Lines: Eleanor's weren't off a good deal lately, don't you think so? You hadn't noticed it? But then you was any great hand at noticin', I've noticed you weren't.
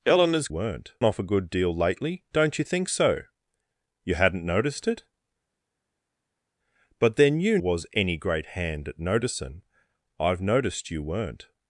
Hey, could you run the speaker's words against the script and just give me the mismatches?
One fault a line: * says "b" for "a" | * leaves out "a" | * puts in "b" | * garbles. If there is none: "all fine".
all fine